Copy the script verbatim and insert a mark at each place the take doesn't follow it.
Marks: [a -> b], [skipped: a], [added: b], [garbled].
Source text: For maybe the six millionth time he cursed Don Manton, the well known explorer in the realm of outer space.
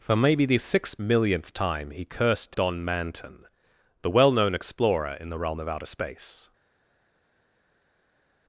For maybe the six millionth time he cursed Don Manton, the well known explorer in the realm of outer space.